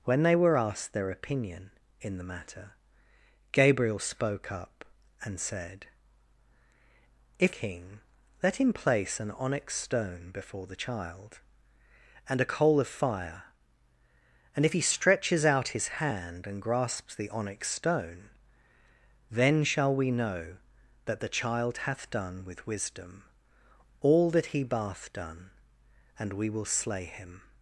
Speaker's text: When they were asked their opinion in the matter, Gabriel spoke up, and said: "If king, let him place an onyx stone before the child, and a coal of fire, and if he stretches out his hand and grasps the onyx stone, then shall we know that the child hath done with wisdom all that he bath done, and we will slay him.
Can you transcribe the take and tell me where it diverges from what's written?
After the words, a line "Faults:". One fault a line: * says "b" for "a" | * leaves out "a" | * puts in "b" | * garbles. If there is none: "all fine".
When they were asked their opinion in the matter, Gabriel spoke up, and said: "If king, let him place an onyx stone before the child, and a coal of fire, and if he stretches out his hand and grasps the onyx stone, then shall we know that the child hath done with wisdom all that he bath done, and we will slay him.
Faults:
all fine